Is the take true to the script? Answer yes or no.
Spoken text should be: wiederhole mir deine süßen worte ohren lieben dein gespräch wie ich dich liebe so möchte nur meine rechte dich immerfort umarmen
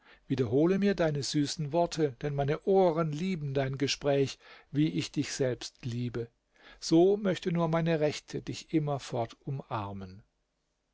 no